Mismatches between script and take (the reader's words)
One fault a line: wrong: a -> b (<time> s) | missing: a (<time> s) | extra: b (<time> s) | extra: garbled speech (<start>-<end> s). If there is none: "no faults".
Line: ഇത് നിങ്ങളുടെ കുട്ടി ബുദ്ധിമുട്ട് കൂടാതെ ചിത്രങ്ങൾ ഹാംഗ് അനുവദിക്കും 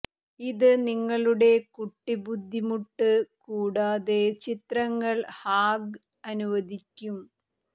no faults